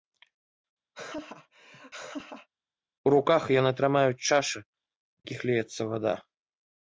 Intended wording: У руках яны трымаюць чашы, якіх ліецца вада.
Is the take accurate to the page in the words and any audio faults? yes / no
no